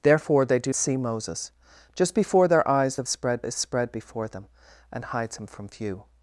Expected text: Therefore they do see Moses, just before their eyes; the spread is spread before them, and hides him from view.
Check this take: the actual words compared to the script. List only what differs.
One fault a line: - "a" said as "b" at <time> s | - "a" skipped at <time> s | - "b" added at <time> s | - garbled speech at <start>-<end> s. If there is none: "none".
none